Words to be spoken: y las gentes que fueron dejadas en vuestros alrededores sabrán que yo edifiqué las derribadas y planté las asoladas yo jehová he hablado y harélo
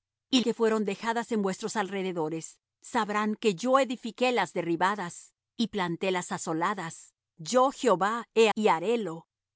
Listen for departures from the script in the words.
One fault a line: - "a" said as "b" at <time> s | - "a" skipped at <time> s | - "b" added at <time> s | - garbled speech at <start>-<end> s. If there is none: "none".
- "las gentes" skipped at 0.4 s
- "hablado" skipped at 8.5 s